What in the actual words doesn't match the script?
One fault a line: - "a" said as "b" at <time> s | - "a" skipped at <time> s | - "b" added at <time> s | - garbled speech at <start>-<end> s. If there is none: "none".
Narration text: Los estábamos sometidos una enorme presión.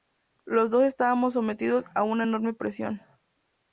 - "dos" added at 0.7 s
- "a" added at 1.9 s